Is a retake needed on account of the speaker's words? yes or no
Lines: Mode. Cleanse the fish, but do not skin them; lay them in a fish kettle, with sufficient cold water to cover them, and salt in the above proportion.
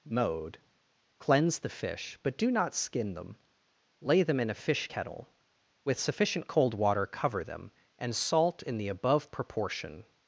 yes